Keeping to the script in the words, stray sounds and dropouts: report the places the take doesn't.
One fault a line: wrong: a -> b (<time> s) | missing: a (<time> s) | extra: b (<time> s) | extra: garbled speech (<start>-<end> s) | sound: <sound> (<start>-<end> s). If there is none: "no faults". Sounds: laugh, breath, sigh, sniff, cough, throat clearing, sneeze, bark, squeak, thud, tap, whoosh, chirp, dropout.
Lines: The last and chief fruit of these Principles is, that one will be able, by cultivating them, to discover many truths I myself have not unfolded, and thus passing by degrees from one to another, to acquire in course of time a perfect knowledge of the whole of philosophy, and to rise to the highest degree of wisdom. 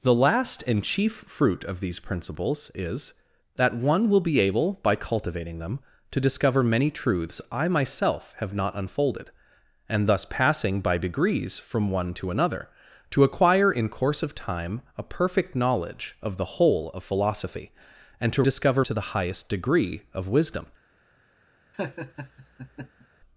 wrong: rise -> discover (18.4 s)
sound: laugh (21.7-23.1 s)